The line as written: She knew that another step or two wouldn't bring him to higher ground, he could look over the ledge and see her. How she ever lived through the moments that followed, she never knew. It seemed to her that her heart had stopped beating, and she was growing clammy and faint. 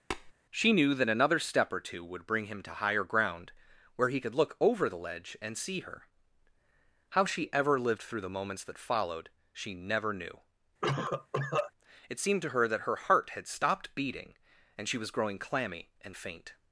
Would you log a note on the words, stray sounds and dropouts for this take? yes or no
yes